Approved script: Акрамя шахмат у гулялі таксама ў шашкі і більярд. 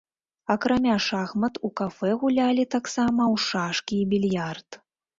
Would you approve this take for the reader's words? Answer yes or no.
no